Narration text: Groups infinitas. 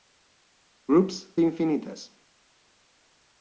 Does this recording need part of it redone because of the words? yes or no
no